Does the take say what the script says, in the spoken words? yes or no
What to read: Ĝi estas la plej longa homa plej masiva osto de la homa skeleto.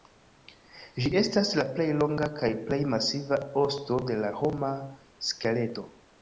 no